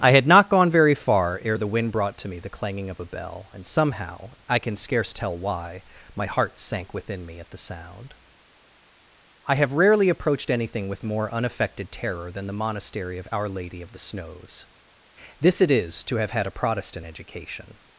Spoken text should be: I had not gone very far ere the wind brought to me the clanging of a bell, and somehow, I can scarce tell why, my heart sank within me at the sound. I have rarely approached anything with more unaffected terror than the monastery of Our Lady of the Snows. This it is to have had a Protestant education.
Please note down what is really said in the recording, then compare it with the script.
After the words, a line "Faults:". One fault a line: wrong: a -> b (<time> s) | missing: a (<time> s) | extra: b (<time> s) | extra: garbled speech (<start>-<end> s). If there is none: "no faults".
I had not gone very far ere the wind brought to me the clanging of a bell, and somehow, I can scarce tell why, my heart sank within me at the sound. I have rarely approached anything with more unaffected terror than the monastery of Our Lady of the Snows. This it is to have had a Protestant education.
Faults:
no faults